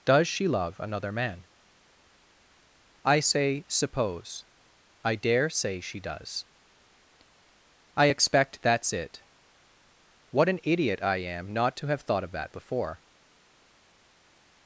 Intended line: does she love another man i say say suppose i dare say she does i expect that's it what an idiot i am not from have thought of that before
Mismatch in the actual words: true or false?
true